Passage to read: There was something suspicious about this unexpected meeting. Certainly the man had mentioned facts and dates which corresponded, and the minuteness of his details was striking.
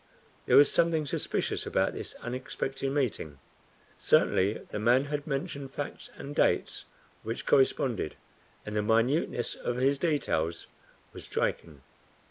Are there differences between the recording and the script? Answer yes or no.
no